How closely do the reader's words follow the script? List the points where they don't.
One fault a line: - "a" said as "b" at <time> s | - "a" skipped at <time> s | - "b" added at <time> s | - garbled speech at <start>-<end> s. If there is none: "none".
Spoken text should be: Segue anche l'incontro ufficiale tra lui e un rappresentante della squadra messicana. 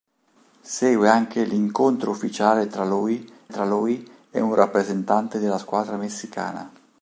- "tra lui" added at 3.5 s